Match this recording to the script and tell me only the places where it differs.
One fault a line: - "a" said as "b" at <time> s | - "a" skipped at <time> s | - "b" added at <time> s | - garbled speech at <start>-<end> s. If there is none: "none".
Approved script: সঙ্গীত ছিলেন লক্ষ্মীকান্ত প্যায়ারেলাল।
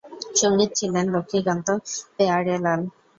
none